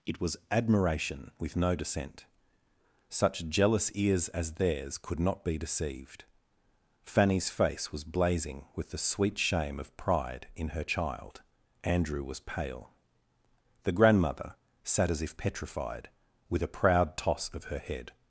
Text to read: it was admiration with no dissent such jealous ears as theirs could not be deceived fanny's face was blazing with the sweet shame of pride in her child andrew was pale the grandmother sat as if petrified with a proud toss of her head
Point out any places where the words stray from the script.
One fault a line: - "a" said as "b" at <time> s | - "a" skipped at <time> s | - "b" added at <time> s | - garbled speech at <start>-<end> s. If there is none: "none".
none